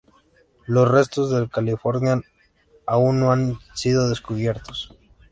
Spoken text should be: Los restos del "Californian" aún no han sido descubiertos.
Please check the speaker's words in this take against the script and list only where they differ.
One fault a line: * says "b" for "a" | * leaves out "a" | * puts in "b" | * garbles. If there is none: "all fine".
all fine